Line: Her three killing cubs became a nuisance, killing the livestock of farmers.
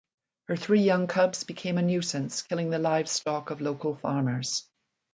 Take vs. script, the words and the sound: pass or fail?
fail